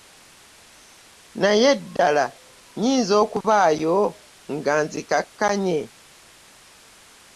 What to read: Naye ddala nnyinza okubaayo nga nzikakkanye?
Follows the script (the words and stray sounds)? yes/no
no